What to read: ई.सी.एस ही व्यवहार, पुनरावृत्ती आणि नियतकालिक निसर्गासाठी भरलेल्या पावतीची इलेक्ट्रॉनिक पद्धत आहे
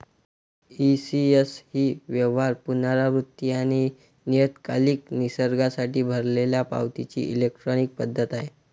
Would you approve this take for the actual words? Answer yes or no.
yes